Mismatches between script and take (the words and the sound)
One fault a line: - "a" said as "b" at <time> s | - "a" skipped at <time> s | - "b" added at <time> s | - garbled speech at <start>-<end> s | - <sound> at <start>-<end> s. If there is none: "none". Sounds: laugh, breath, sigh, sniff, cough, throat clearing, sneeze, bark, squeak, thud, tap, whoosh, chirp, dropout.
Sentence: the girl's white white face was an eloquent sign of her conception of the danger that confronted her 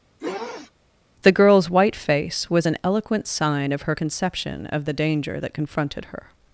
- sniff at 0.2-0.7 s
- "white" skipped at 2.0 s